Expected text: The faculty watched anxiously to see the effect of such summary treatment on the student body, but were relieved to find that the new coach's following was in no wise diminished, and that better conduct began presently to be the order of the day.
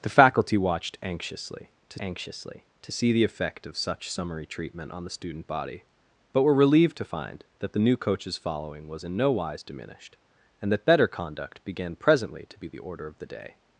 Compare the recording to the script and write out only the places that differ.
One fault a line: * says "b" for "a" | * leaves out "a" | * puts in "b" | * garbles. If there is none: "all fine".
* puts in "anxiously to"